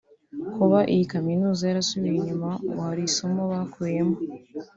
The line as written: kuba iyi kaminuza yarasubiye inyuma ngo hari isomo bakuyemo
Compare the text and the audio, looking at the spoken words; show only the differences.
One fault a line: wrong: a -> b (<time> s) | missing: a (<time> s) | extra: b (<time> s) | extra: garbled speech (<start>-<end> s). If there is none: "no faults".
no faults